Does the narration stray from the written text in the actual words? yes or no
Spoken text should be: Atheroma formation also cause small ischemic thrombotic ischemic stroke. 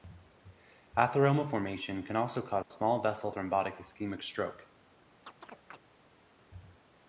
yes